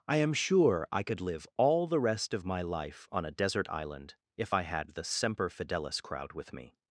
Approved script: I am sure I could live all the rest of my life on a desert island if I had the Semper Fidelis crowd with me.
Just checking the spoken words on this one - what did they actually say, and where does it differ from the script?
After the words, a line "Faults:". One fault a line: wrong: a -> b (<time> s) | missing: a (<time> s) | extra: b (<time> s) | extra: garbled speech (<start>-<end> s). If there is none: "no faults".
I am sure I could live all the rest of my life on a desert island if I had the Semper Fidelis crowd with me.
Faults:
no faults